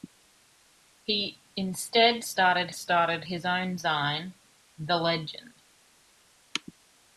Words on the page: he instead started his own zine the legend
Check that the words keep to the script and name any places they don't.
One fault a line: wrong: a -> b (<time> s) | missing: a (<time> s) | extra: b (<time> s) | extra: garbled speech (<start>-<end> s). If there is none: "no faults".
extra: started (2.7 s)